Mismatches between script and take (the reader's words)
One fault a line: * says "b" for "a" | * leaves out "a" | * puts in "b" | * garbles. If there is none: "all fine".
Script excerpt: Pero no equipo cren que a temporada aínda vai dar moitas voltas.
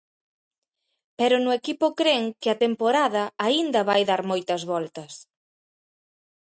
all fine